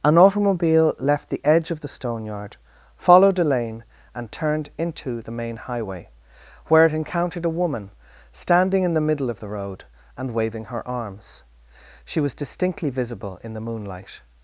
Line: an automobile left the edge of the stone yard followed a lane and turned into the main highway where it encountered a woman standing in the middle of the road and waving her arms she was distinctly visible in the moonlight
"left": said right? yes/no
yes